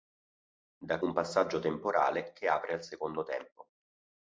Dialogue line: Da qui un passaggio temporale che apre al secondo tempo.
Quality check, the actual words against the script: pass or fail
fail